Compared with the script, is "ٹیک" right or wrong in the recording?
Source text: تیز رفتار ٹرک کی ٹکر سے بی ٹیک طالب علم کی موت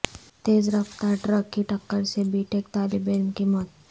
right